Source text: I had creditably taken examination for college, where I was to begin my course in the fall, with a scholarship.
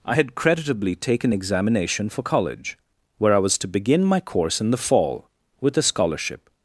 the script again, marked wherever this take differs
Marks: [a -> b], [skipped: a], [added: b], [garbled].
I had creditably taken examination for college, where I was to begin my course in the fall, with a scholarship.